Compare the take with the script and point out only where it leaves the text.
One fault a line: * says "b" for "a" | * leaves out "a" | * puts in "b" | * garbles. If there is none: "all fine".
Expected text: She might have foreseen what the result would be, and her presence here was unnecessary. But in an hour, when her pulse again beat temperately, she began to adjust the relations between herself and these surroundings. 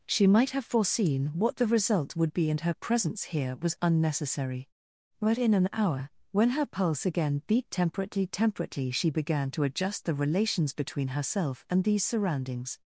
* puts in "temperately"